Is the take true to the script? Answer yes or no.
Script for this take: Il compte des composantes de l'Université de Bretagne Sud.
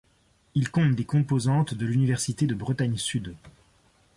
yes